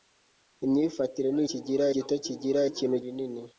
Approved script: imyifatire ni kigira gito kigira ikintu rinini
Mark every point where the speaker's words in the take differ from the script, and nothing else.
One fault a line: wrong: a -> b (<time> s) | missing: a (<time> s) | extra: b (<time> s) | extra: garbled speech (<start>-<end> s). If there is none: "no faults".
no faults